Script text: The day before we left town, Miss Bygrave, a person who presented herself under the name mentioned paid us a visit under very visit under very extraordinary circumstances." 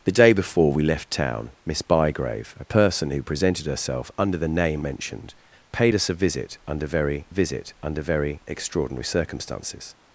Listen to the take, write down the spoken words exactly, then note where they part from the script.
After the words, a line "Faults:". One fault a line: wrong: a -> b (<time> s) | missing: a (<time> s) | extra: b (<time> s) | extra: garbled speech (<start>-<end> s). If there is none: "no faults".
The day before we left town, Miss Bygrave, a person who presented herself under the name mentioned paid us a visit under very visit under very extraordinary circumstances."
Faults:
no faults